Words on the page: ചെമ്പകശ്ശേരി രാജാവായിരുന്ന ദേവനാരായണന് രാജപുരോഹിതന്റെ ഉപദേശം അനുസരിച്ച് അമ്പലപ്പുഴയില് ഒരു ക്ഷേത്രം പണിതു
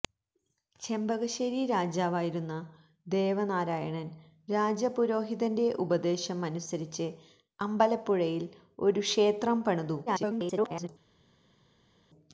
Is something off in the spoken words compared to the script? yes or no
yes